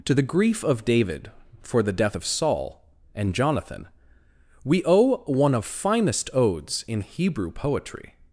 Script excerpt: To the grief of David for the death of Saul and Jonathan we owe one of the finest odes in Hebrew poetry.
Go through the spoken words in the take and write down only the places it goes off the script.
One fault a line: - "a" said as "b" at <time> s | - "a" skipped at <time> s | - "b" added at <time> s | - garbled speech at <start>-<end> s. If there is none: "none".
- "the" skipped at 5.6 s